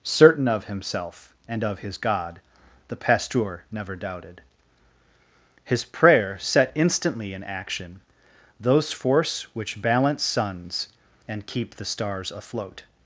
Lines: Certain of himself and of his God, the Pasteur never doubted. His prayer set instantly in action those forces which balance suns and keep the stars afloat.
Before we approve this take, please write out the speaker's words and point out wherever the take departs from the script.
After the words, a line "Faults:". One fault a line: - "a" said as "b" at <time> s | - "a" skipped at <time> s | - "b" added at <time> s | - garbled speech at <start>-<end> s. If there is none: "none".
Certain of himself and of his God, the Pasteur never doubted. His prayer set instantly in action those force which balance suns and keep the stars afloat.
Faults:
- "forces" said as "force" at 8.9 s